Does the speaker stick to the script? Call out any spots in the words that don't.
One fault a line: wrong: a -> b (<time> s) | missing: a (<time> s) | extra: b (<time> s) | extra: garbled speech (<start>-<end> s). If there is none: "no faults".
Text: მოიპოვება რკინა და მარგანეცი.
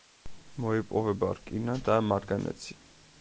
no faults